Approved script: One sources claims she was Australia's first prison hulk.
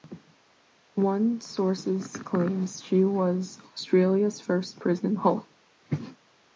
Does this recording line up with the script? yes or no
yes